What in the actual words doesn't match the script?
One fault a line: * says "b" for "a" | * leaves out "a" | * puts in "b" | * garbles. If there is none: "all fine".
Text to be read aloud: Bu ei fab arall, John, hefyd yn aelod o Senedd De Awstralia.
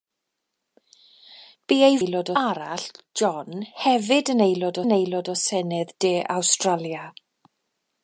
* says "aelod" for "fab"
* puts in "yn aelod"